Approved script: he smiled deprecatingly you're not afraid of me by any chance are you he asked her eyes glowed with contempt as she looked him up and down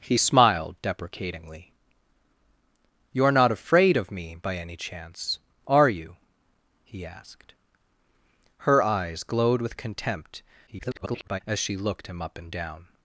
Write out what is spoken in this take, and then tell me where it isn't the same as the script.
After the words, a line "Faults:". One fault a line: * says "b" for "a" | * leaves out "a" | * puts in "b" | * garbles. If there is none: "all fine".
he smiled deprecatingly you're not afraid of me by any chance are you he asked her eyes glowed with contempt [garbled] as she looked him up and down
Faults:
* garbles